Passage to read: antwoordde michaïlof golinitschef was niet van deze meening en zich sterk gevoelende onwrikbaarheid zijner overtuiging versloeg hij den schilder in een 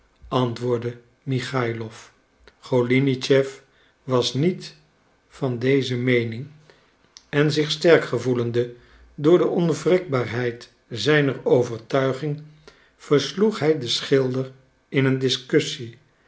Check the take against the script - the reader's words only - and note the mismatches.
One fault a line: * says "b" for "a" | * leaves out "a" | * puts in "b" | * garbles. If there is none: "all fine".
* puts in "door de"